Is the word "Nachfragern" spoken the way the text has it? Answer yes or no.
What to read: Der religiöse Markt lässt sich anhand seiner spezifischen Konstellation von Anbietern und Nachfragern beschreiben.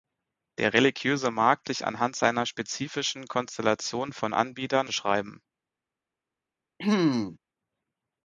no